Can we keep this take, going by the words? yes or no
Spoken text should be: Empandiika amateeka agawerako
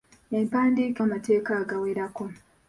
yes